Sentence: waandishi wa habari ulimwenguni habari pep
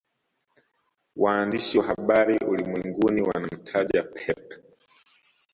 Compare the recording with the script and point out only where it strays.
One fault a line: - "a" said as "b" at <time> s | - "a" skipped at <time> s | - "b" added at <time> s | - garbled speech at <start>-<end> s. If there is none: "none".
- "habari" said as "wanamtaja" at 3.2 s